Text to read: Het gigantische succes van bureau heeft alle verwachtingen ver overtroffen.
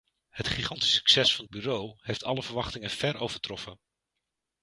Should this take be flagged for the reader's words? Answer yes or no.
no